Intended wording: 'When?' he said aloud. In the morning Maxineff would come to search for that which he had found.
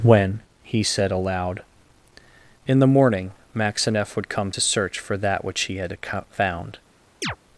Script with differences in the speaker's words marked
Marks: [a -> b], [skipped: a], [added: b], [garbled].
'When?' he said aloud. In the morning Maxineff would come to search for that which he had found.